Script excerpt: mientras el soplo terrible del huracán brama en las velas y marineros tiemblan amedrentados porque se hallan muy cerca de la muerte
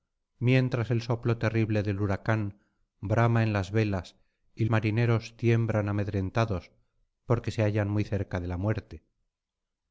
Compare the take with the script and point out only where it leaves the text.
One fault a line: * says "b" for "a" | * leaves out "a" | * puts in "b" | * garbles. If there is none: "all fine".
all fine